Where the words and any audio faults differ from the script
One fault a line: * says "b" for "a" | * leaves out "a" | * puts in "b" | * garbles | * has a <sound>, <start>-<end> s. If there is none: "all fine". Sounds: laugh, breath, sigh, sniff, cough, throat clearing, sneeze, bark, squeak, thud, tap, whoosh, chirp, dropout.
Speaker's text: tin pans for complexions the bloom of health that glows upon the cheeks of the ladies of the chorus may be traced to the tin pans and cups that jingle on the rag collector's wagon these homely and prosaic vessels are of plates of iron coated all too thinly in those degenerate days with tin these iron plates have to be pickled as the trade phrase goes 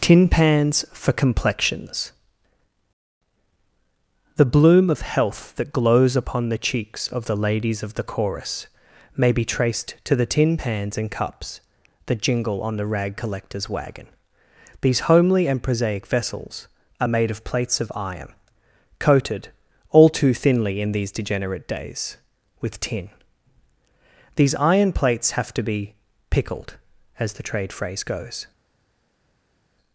* puts in "made"
* says "these" for "those"